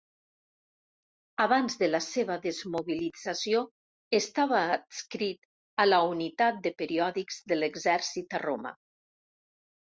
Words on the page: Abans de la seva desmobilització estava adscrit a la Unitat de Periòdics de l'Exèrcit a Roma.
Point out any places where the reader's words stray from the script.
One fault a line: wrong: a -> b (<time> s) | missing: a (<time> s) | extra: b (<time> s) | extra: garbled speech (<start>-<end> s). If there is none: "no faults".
no faults